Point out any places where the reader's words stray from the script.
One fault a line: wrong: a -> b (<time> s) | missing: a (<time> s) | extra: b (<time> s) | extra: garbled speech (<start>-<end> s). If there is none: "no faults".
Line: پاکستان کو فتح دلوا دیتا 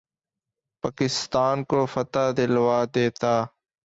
no faults